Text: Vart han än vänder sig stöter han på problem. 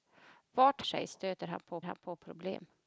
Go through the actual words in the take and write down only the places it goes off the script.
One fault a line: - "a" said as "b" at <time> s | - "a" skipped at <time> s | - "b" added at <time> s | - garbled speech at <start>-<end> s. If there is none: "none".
- "han än vänder sig stöter" said as "sig stöter han på" at 0.8 s